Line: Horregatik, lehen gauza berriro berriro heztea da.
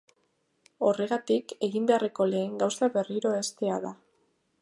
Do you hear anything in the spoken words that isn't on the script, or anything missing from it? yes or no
yes